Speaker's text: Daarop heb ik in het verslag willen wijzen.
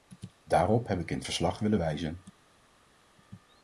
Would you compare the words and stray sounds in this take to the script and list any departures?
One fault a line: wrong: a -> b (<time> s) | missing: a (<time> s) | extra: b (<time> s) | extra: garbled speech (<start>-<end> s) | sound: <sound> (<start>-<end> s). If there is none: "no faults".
no faults